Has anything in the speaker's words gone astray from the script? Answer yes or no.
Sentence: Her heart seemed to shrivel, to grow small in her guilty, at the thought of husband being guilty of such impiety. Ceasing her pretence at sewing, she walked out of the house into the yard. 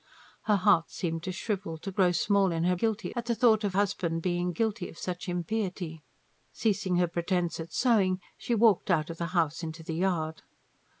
no